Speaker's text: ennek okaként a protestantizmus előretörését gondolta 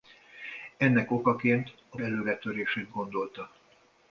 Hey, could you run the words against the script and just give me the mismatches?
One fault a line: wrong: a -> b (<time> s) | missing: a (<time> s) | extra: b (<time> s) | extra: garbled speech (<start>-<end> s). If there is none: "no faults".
missing: protestantizmus (2.0 s)